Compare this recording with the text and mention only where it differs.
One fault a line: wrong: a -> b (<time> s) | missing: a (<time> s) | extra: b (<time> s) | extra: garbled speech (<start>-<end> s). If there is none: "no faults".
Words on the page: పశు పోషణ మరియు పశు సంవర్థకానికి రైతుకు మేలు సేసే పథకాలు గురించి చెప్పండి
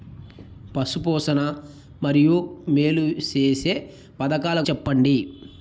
missing: పశు సంవర్థకానికి రైతుకు (2.4 s)
missing: గురించి (4.6 s)